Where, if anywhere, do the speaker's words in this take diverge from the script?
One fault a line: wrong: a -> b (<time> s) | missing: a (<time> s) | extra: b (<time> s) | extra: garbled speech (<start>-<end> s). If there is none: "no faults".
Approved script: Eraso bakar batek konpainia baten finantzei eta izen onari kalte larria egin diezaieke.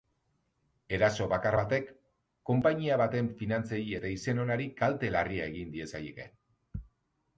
no faults